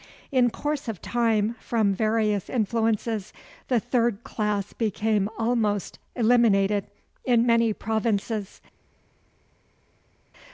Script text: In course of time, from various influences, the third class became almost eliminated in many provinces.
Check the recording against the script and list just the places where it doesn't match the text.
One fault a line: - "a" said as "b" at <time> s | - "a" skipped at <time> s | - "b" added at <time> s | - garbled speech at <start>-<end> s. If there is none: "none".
none